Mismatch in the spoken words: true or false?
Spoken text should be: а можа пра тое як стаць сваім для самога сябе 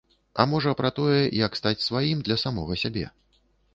false